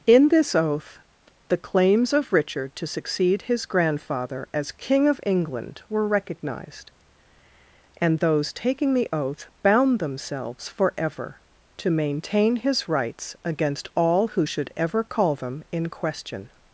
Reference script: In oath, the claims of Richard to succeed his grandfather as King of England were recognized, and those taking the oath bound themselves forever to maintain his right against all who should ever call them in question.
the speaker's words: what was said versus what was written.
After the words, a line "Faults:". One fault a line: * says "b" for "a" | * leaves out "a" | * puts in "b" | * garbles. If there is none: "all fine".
In this oath, the claims of Richard to succeed his grandfather as King of England were recognized, and those taking the oath bound themselves forever to maintain his rights against all who should ever call them in question.
Faults:
* puts in "this"
* says "rights" for "right"